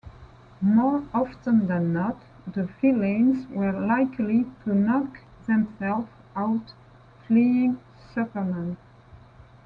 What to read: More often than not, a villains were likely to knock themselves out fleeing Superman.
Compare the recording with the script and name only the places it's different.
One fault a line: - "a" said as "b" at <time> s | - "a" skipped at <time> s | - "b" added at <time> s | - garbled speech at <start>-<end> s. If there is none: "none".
- "a" said as "the" at 2.5 s